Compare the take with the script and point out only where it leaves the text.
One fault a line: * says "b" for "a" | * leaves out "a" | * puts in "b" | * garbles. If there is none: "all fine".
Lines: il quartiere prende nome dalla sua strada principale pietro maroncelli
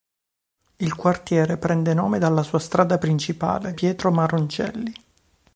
all fine